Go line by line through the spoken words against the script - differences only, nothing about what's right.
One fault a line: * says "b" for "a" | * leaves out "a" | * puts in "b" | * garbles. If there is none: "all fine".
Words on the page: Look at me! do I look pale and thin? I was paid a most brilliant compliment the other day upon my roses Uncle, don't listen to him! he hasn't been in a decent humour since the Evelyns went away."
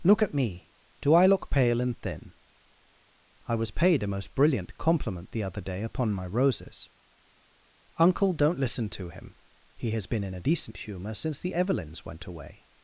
* says "has" for "hasn't"